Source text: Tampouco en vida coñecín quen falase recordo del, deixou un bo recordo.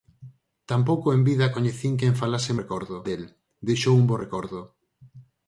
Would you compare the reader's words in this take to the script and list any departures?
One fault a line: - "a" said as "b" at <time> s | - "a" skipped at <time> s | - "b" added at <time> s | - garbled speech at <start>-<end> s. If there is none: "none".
none